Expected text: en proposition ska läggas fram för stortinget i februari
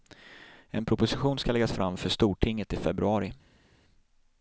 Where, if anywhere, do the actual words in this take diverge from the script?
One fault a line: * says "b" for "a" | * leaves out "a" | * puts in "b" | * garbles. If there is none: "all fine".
all fine